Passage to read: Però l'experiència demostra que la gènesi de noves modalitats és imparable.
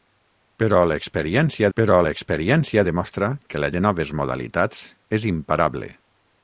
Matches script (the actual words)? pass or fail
fail